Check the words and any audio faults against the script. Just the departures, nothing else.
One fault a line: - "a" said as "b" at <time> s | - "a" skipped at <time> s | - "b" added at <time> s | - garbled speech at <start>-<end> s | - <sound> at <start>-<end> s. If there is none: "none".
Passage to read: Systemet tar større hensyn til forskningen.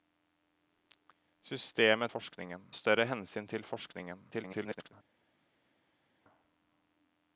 - "tar" said as "forskningen" at 2.1 s
- garbled speech at 4.3-4.9 s